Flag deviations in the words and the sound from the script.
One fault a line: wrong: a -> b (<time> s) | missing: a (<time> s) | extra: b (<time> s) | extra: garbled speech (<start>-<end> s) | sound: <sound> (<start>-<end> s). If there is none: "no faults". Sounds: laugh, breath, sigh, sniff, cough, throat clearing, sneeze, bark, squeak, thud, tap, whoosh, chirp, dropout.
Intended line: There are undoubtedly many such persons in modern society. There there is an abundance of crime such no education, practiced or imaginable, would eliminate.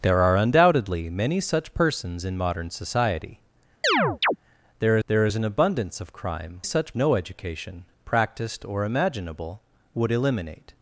sound: chirp (3.8-4.4 s)